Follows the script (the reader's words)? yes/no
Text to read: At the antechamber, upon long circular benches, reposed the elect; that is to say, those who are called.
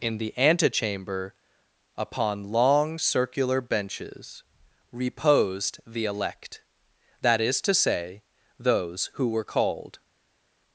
no